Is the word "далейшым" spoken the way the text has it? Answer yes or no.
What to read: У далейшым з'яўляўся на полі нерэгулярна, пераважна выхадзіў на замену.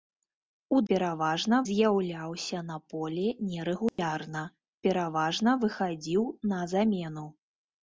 no